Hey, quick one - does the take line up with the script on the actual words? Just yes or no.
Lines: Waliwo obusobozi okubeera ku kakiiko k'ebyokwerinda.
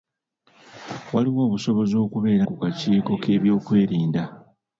yes